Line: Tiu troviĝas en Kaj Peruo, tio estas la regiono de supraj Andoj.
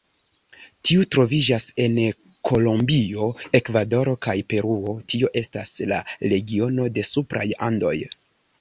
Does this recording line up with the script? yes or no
no